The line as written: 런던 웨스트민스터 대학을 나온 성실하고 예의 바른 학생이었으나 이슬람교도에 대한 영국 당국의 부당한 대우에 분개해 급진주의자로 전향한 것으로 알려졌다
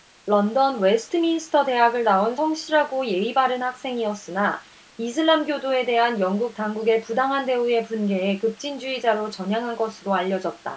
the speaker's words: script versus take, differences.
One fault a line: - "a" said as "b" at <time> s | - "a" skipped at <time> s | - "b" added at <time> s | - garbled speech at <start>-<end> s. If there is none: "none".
none